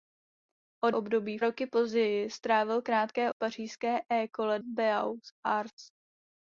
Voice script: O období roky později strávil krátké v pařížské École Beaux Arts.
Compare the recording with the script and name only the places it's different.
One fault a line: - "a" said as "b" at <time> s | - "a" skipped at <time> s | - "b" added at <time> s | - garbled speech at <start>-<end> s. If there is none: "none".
none